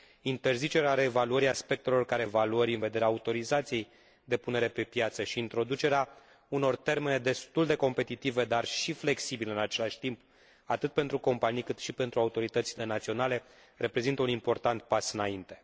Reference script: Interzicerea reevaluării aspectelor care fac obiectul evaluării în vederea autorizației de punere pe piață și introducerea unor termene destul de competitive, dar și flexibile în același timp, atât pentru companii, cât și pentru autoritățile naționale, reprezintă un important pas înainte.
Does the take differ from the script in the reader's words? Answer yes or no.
yes